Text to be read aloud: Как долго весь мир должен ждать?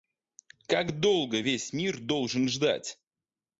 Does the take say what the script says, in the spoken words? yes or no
yes